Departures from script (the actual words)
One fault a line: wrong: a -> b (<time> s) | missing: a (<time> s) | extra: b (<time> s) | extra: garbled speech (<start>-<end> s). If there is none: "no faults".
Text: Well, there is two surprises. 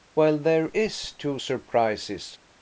no faults